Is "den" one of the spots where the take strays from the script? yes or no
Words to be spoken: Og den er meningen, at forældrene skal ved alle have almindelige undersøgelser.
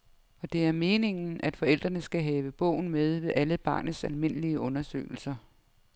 yes